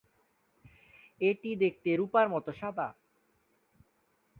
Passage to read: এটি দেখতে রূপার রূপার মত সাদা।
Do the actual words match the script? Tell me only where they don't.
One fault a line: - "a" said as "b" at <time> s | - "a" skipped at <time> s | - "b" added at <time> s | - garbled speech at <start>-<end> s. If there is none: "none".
- "রূপার" skipped at 2.2 s